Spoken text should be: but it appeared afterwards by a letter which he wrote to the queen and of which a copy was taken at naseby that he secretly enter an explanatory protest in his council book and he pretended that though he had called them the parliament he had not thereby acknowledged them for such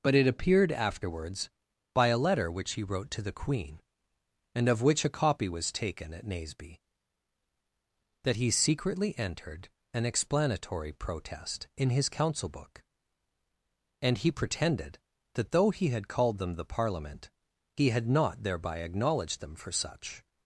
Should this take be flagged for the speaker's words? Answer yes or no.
yes